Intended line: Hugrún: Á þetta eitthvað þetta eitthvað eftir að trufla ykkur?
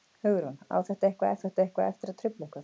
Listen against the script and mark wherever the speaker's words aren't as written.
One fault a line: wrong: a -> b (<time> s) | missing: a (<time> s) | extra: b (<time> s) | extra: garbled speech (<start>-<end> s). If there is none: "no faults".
no faults